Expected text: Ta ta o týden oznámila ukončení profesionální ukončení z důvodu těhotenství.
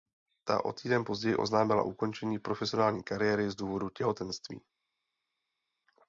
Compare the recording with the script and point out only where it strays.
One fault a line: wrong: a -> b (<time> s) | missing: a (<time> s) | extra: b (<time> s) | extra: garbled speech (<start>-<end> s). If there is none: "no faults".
missing: ta (0.7 s)
extra: později (1.0 s)
wrong: ukončení -> kariéry (3.0 s)